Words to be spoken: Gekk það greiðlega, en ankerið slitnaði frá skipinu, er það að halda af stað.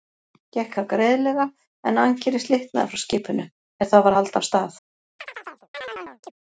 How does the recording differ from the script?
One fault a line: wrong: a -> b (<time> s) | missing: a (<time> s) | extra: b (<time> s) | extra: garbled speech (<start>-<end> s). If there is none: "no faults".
extra: var (4.1 s)